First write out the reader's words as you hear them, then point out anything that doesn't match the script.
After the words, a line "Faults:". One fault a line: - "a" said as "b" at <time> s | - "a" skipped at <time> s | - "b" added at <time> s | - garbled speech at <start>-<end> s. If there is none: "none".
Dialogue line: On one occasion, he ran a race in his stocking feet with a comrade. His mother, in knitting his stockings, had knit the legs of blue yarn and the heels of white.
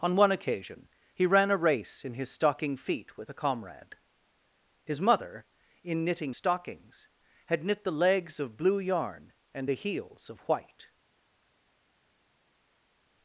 On one occasion, he ran a race in his stocking feet with a comrade. His mother, in knitting stockings, had knit the legs of blue yarn and the heels of white.
Faults:
- "his" skipped at 6.3 s